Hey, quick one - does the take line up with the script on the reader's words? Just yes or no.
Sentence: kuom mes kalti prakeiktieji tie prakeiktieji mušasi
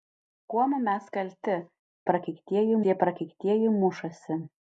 yes